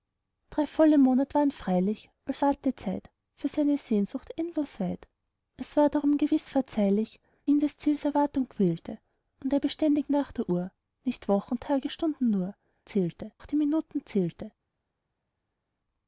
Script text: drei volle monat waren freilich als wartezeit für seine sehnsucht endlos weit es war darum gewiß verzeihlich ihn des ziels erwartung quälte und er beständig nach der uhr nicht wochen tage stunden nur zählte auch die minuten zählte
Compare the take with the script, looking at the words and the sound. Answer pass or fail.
pass